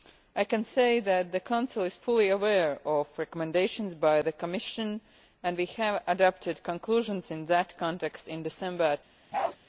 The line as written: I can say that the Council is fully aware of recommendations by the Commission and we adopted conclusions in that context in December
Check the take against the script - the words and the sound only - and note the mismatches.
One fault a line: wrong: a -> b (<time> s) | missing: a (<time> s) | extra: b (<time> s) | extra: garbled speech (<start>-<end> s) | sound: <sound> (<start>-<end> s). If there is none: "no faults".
sound: bark (9.3-9.6 s)